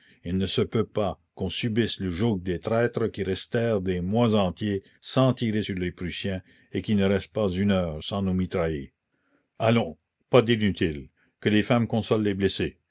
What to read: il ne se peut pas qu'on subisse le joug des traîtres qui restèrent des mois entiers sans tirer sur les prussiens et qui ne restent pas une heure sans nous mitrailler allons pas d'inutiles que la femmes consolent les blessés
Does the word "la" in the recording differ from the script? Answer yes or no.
yes